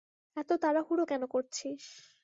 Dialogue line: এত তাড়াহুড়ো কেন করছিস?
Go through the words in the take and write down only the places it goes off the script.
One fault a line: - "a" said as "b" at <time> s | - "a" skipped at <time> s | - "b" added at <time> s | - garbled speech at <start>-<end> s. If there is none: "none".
none